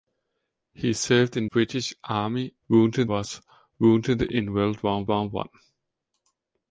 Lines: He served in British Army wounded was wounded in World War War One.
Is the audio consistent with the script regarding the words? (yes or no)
yes